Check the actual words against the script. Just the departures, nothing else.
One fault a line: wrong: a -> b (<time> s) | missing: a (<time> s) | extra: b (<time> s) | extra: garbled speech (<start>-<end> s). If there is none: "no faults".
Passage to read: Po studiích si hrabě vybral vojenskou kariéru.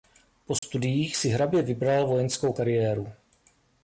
no faults